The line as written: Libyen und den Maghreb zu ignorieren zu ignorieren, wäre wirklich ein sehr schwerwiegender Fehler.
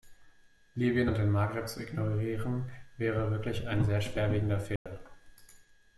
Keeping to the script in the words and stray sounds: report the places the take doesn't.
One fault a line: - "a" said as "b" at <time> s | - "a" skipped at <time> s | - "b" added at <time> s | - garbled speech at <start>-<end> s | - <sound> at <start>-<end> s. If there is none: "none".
- "zu ignorieren" skipped at 2.7 s
- dropout at 4.8-4.9 s